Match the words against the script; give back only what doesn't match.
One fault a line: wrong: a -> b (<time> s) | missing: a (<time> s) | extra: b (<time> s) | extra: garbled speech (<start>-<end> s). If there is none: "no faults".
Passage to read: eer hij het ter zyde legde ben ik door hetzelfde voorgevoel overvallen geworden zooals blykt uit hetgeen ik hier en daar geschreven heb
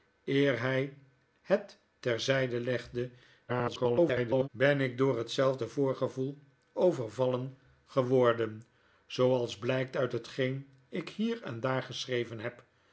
extra: garbled speech (3.5-4.5 s)